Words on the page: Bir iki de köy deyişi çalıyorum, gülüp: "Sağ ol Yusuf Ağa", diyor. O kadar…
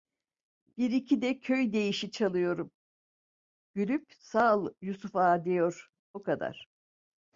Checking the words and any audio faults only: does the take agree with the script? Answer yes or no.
yes